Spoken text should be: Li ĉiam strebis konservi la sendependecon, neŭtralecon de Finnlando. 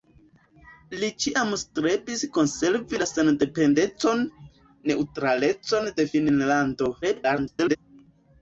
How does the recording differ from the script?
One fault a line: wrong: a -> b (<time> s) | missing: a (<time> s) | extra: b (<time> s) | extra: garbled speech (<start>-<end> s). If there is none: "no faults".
extra: garbled speech (7.0-7.8 s)